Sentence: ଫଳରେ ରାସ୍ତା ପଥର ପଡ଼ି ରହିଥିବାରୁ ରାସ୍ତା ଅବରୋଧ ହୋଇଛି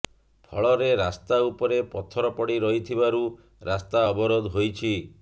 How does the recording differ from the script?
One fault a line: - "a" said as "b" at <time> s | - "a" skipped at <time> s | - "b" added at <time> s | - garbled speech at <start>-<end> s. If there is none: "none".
- "ଉପରେ" added at 1.5 s